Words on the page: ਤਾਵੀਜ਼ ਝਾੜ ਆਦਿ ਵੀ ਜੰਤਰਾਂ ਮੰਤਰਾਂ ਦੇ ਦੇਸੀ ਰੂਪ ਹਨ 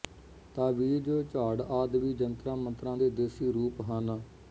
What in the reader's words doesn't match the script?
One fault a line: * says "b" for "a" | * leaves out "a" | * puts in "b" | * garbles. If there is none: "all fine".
all fine